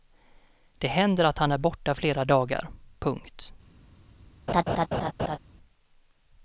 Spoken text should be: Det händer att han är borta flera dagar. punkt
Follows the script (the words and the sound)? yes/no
no